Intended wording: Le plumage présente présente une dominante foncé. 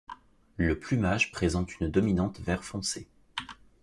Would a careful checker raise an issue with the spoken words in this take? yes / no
yes